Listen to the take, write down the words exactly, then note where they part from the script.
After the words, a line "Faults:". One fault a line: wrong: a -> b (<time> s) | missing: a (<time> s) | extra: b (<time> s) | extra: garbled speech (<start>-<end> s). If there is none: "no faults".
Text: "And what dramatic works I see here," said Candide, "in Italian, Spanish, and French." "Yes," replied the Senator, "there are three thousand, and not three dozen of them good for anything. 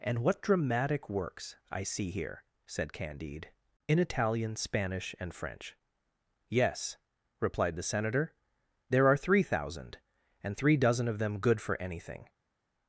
"And what dramatic works I see here," said Candide, "in Italian, Spanish, and French." "Yes," replied the Senator, "there are three thousand, and three dozen of them good for anything.
Faults:
missing: not (10.6 s)